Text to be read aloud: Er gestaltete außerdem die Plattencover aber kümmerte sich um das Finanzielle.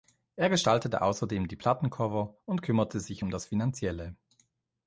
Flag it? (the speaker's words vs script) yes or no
yes